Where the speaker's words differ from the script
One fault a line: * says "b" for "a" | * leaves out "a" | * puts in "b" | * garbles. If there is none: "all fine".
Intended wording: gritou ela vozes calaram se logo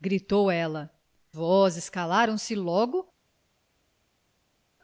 all fine